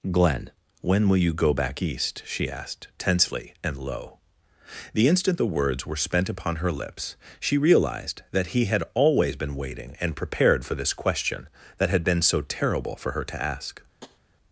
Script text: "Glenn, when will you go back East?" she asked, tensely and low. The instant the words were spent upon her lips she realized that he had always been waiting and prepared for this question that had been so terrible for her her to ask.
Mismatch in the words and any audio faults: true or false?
true